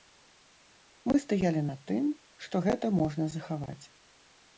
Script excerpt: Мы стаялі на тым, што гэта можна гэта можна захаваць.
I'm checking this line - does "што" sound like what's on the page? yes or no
yes